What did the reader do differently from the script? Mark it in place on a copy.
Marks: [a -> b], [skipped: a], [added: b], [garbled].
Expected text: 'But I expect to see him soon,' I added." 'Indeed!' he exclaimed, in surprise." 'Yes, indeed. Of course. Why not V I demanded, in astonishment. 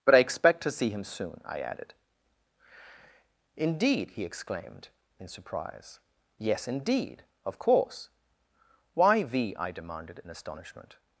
'But I expect to see him soon,' I added." 'Indeed!' he exclaimed, in surprise." 'Yes, indeed. Of course. Why [skipped: not] V I demanded, in astonishment.